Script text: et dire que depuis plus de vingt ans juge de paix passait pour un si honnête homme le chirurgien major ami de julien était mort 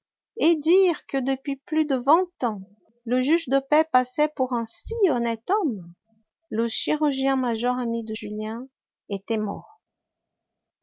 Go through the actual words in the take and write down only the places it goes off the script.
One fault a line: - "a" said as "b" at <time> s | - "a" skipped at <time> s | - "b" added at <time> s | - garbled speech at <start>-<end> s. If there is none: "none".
- "le" added at 3.0 s